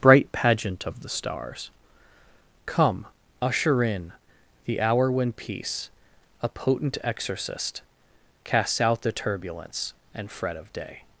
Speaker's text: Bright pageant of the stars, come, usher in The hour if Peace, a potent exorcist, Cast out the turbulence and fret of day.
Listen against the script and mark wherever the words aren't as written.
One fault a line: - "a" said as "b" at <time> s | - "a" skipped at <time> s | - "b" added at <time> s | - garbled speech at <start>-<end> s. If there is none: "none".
- "if" said as "when" at 5.1 s
- "Cast" said as "Casts" at 8.4 s